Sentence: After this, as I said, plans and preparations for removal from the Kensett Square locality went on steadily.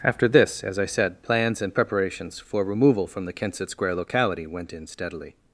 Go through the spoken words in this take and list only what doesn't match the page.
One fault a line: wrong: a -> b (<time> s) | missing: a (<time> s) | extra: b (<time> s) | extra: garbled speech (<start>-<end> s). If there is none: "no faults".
wrong: on -> in (4.7 s)